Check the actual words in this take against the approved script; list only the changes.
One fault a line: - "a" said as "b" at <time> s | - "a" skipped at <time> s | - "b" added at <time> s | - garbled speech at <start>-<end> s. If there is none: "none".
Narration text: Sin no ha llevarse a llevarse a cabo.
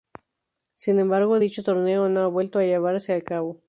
- "embargo dicho torneo" added at 1.0 s
- "llevarse" said as "vuelto" at 2.3 s